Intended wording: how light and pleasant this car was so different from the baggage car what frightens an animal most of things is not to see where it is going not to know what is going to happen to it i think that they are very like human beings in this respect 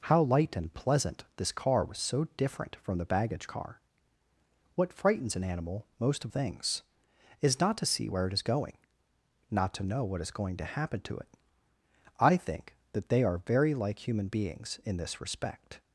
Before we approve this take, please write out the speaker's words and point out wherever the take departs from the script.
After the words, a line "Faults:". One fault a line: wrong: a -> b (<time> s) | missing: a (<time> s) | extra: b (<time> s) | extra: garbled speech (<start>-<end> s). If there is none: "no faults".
how light and pleasant this car was so different from the baggage car what frightens an animal most of things is not to see where it is going not to know what is going to happen to it i think that they are very like human beings in this respect
Faults:
no faults